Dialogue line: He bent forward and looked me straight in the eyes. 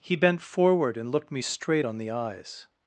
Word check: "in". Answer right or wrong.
wrong